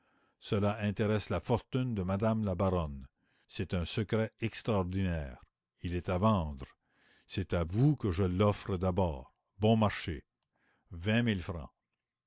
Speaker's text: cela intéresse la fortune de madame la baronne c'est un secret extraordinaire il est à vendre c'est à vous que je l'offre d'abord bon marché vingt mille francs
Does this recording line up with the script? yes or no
yes